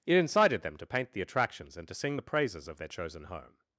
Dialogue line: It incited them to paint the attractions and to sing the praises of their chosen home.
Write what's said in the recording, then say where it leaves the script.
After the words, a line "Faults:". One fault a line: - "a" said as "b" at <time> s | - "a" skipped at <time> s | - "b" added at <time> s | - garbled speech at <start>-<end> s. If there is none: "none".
It incited them to paint the attractions and to sing the praises of their chosen home.
Faults:
none